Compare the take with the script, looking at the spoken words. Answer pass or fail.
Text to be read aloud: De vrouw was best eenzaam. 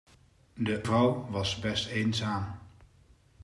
pass